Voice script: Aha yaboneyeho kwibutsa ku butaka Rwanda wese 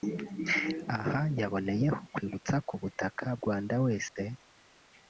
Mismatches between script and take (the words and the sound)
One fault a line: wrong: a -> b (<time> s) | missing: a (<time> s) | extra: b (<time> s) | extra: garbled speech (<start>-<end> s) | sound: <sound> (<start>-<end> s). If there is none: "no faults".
sound: dropout (4.1-4.2 s)